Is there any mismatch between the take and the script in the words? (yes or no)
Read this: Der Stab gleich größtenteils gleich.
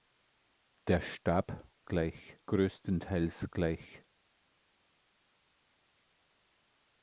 no